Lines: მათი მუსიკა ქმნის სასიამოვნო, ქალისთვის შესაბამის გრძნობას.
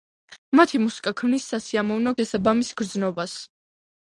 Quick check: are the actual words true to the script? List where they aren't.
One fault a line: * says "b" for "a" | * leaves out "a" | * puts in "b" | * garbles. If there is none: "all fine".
* leaves out "ქალისთვის"